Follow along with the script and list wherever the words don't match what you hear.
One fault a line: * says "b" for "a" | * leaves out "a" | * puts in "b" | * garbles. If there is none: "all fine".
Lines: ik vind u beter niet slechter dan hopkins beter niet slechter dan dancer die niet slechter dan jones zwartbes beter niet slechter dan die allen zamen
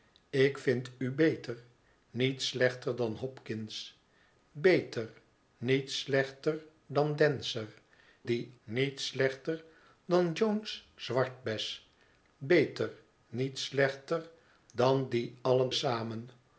all fine